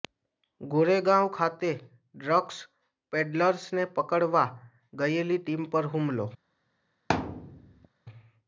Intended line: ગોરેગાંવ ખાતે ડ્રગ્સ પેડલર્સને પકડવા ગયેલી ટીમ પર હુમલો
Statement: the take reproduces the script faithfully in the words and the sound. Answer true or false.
false